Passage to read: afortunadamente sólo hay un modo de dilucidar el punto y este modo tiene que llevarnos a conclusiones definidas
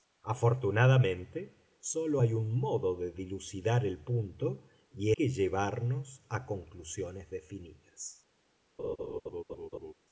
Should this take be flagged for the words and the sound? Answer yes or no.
yes